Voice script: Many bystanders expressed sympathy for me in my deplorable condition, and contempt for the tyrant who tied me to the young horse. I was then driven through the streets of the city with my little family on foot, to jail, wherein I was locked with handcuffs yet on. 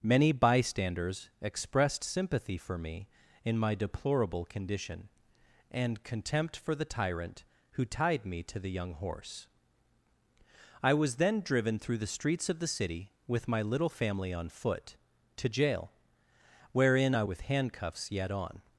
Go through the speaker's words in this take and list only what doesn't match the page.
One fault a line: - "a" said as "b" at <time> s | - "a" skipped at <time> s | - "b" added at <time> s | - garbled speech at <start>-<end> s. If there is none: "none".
- "was locked" skipped at 17.2 s